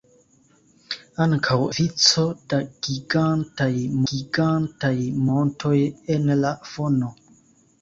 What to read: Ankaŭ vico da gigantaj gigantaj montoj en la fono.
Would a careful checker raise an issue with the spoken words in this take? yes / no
no